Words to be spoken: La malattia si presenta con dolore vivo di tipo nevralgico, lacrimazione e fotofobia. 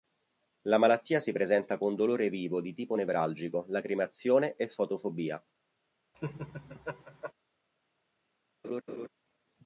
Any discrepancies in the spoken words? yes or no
no